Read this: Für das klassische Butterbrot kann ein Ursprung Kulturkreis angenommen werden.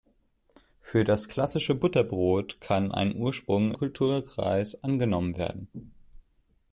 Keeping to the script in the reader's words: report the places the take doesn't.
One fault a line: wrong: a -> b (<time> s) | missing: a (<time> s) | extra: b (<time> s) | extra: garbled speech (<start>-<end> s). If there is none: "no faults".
no faults